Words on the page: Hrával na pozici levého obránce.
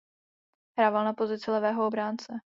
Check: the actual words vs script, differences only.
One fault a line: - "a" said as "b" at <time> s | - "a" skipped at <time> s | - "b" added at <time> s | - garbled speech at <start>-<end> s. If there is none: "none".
none